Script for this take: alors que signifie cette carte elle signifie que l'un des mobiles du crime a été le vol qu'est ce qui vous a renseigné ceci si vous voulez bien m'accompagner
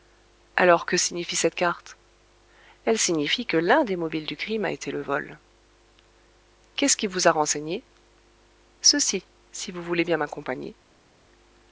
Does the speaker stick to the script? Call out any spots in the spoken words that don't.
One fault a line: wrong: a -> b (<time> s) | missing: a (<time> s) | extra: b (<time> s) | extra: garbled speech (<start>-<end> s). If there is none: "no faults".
no faults